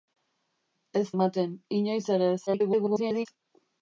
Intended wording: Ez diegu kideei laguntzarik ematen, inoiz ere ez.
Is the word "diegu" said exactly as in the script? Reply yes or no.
no